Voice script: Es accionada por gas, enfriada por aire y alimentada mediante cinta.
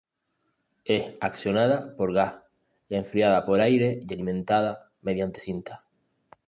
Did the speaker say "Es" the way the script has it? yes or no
yes